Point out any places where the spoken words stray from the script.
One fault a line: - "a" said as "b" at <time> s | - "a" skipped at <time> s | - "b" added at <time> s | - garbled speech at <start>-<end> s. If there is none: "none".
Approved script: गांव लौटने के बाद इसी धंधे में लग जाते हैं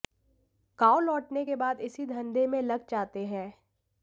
none